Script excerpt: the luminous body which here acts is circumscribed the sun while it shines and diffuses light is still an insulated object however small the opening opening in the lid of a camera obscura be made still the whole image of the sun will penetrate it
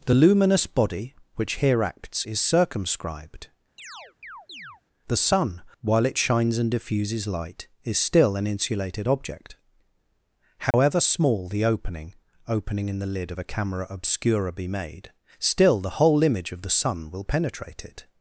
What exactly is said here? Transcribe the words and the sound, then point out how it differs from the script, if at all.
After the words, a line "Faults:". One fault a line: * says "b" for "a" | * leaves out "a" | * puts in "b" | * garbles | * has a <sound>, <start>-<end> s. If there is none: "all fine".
the luminous body which here acts is circumscribed the sun while it shines and diffuses light is still an insulated object however small the opening opening in the lid of a camera obscura be made still the whole image of the sun will penetrate it
Faults:
* has a chirp, 3.8-4.8 s
* has a dropout, 10.7-10.7 s